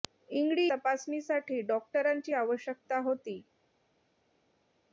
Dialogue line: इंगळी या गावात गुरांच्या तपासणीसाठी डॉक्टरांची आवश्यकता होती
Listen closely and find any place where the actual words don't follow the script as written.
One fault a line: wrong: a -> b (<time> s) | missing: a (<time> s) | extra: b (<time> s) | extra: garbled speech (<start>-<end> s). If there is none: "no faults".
missing: या गावात गुरांच्या (0.6 s)